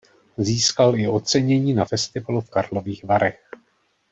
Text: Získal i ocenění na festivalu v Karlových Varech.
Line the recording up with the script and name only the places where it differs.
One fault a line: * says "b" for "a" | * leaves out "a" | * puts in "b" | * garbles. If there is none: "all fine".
all fine